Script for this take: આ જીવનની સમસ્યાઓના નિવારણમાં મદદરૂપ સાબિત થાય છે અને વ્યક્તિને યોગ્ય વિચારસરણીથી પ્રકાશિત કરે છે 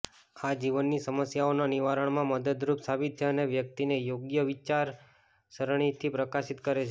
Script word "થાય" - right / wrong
wrong